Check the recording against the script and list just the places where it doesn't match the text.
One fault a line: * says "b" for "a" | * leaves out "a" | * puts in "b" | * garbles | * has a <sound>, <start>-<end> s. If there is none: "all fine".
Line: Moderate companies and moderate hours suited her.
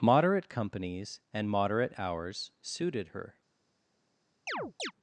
* has a chirp, 4.5-4.9 s